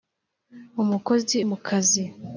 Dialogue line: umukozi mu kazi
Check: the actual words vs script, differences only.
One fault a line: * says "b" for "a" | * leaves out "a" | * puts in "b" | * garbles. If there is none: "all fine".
all fine